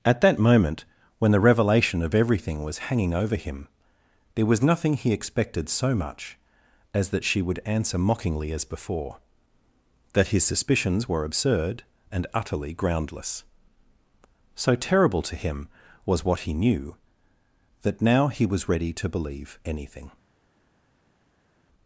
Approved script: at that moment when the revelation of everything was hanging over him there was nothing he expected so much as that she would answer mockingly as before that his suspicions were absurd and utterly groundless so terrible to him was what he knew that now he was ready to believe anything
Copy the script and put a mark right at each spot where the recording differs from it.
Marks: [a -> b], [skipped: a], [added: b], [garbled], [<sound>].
at that moment when the revelation of everything was hanging over him there was nothing he expected so much as that she would answer mockingly as before that his suspicions were absurd and utterly groundless so terrible to him was what he knew that now he was ready to believe anything